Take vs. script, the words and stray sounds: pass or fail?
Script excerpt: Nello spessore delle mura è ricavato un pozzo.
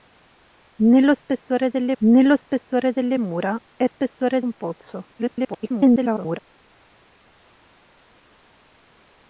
fail